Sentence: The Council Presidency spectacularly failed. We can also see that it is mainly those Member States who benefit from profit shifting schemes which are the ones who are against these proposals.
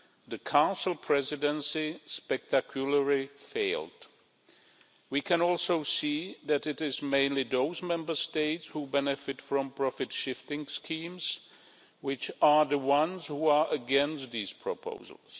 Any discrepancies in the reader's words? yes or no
no